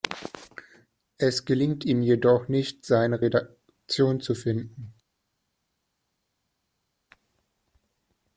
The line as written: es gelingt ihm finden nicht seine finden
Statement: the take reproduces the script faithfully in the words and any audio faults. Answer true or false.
false